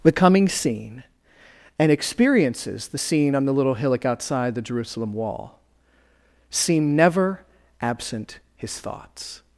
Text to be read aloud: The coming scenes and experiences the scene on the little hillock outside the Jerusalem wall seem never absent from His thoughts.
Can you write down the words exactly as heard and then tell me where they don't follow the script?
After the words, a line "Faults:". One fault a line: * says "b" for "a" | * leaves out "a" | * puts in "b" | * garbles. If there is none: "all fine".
The coming scene and experiences the scene on the little hillock outside the Jerusalem wall seem never absent His thoughts.
Faults:
* says "scene" for "scenes"
* leaves out "from"